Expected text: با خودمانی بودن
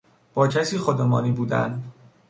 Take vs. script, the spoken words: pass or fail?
fail